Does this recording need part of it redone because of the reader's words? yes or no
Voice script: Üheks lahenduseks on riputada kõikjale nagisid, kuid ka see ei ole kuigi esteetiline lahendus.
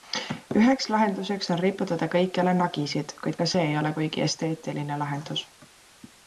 no